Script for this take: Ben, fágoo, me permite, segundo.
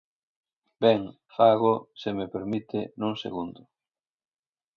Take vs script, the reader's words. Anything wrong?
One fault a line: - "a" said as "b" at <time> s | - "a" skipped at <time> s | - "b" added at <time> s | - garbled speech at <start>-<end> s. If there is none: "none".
- "se" added at 2.0 s
- "nun" added at 3.0 s